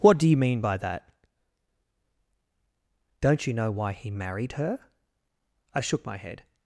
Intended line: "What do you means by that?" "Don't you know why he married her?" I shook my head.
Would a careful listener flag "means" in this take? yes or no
yes